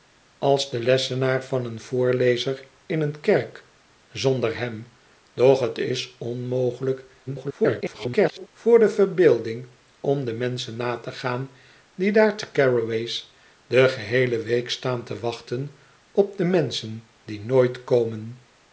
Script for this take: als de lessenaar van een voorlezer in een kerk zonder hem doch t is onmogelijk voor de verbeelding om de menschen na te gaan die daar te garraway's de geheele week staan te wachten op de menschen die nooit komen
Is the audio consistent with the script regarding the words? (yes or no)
no